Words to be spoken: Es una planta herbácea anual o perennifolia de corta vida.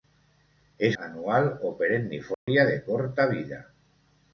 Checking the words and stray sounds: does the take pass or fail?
fail